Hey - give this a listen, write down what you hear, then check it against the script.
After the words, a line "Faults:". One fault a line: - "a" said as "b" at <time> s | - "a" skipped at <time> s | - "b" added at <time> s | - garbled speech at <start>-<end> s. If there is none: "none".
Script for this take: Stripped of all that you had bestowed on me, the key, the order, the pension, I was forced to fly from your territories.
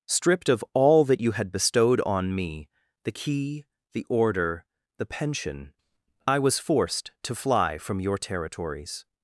Stripped of all that you had bestowed on me, the key, the order, the pension, I was forced to fly from your territories.
Faults:
none